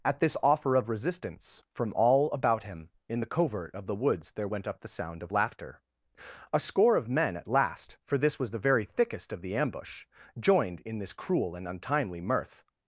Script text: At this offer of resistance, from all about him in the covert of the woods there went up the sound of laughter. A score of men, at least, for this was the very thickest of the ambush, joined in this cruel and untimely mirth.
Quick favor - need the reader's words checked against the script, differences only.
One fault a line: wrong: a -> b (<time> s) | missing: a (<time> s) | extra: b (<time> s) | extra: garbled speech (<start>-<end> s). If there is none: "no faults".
wrong: least -> last (7.5 s)